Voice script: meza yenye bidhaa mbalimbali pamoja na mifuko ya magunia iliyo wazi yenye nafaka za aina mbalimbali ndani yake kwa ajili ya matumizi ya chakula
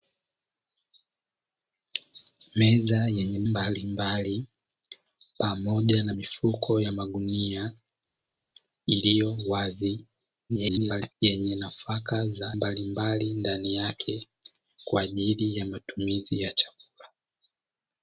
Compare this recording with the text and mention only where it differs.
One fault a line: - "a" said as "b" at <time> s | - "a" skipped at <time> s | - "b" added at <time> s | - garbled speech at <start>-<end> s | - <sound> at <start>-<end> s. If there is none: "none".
- "bidhaa" skipped at 3.4 s
- garbled speech at 10.5-11.1 s
- "aina" skipped at 12.5 s